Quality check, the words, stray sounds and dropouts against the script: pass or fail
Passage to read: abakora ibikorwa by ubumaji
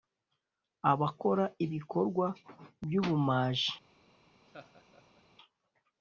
fail